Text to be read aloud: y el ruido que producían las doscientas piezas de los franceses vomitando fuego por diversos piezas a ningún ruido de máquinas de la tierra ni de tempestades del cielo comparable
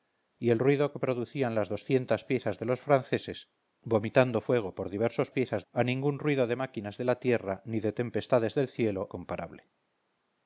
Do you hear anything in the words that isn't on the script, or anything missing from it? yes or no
no